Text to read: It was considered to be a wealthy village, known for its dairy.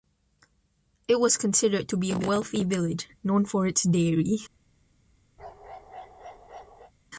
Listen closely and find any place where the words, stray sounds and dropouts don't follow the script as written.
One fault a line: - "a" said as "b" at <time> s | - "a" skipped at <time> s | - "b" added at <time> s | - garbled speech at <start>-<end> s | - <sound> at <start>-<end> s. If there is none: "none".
- bark at 5.4-6.9 s